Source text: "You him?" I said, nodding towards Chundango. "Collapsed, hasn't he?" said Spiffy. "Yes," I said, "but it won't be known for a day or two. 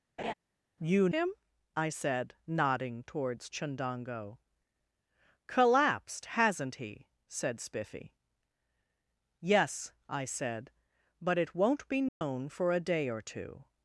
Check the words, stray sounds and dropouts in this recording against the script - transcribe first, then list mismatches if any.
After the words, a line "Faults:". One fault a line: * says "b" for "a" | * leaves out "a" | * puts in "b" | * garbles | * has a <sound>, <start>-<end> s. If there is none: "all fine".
"You him?" I said, nodding towards Chundango. "Collapsed, hasn't he?" said Spiffy. "Yes," I said, "but it won't be known for a day or two.
Faults:
* has a laugh, 0.2-0.3 s
* has a dropout, 12.1-12.2 s